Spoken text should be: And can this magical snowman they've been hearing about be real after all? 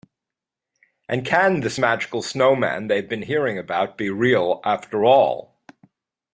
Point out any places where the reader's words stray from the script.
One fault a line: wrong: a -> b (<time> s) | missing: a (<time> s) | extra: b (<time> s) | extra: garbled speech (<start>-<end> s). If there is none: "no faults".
no faults